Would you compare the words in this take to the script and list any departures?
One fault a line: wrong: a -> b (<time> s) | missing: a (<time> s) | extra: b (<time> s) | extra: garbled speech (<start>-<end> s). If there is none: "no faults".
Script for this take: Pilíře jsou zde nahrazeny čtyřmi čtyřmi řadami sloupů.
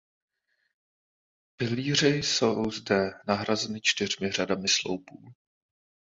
missing: čtyřmi (4.3 s)